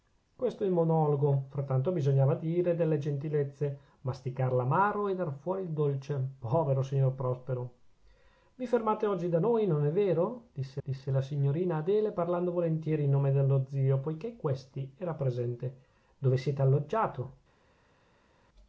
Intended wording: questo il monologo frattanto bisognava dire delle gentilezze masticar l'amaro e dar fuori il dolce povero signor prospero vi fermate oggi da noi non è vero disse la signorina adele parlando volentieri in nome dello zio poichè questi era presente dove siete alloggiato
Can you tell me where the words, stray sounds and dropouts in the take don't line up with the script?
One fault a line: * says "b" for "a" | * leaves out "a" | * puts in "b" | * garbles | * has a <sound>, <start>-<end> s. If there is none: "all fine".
* puts in "disse"